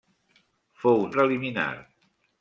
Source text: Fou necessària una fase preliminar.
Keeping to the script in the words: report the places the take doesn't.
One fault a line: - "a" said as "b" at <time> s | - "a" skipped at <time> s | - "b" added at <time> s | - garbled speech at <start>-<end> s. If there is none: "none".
- "necessària una fase" skipped at 1.0 s